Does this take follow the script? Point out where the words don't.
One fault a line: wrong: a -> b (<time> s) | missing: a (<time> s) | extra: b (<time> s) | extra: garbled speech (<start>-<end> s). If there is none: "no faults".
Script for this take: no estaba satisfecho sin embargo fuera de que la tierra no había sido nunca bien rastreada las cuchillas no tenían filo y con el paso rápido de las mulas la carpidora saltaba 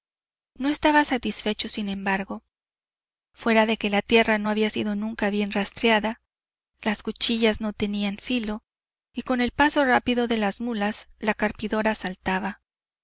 no faults